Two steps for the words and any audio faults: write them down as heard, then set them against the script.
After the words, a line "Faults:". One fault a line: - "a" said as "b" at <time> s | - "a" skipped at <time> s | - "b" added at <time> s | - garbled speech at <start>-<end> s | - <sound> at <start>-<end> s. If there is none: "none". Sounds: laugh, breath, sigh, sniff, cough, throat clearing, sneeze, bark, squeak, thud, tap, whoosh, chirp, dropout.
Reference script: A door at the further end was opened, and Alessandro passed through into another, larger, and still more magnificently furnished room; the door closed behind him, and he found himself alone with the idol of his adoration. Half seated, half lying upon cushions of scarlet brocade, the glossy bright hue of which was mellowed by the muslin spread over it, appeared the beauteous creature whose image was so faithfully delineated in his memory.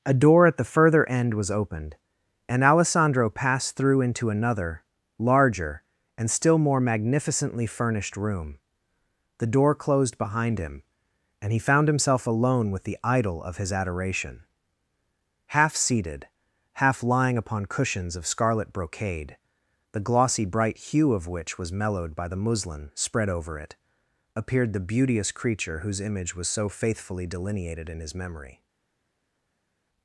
A door at the further end was opened, and Alessandro passed through into another, larger, and still more magnificently furnished room; the door closed behind him, and he found himself alone with the idol of his adoration. Half seated, half lying upon cushions of scarlet brocade, the glossy bright hue of which was mellowed by the muslin spread over it, appeared the beauteous creature whose image was so faithfully delineated in his memory.
Faults:
none